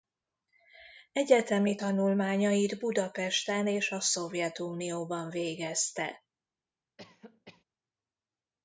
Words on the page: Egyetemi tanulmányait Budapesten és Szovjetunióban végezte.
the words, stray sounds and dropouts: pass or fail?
fail